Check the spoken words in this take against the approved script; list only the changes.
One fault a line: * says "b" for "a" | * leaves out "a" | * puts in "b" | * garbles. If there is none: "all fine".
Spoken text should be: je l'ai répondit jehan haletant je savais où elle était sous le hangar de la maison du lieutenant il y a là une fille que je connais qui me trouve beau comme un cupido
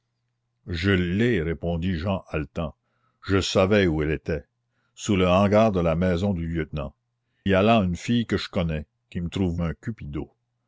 * leaves out "il"
* leaves out "beau comme"